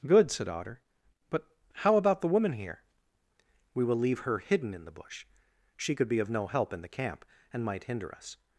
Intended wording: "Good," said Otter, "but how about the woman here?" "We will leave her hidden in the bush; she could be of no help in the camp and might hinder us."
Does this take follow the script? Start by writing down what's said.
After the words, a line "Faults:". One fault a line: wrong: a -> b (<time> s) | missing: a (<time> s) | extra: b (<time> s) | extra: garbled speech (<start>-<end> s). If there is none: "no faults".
"Good," said Otter, "but how about the woman here?" "We will leave her hidden in the bush; she could be of no help in the camp and might hinder us."
Faults:
no faults